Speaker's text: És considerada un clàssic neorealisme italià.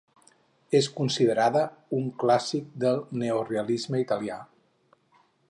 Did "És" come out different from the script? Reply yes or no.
no